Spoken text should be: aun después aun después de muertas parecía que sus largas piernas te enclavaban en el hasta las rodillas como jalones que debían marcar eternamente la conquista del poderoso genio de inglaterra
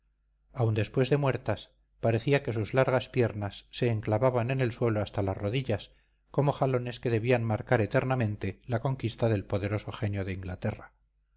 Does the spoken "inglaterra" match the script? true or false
true